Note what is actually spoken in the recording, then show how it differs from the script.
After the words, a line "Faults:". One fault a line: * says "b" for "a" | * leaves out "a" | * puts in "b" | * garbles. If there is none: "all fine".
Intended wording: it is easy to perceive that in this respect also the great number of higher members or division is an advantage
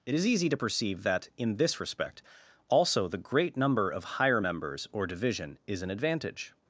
it is easy to perceive that in this respect also the great number of higher members or division is an advantage
Faults:
all fine